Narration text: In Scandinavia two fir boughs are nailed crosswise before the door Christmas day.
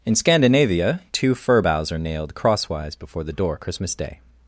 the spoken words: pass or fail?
pass